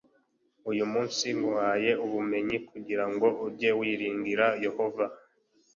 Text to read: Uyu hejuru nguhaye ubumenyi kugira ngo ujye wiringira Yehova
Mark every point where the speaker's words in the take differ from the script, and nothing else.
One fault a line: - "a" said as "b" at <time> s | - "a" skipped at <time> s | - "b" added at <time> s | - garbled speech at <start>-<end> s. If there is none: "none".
- "hejuru" said as "munsi" at 0.9 s